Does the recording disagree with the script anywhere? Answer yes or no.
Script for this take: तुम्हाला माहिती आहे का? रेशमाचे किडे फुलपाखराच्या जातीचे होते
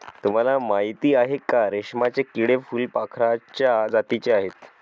yes